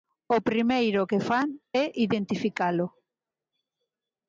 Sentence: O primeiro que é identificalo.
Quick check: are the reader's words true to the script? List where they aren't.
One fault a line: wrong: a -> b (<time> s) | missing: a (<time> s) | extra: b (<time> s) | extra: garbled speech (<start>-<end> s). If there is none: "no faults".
extra: fan (1.3 s)